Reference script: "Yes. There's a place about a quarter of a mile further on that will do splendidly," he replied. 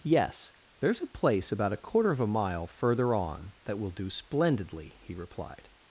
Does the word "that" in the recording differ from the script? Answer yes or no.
no